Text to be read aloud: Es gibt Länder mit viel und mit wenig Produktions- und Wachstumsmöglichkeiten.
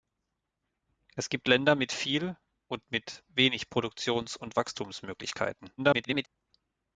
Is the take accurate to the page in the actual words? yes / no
no